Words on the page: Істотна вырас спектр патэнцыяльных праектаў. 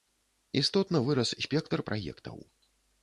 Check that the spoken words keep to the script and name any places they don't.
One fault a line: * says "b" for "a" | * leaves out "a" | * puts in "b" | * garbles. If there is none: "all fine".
* leaves out "патэнцыяльных"